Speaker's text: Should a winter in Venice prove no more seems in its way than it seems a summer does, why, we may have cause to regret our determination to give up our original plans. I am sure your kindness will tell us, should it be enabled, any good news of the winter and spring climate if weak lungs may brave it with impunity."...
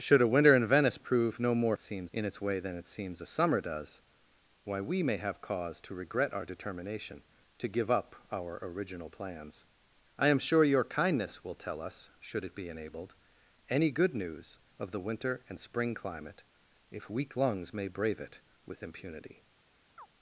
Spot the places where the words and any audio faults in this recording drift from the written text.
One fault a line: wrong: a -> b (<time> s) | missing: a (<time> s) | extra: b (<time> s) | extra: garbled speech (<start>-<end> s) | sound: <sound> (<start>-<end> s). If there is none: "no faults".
sound: chirp (20.0-20.1 s)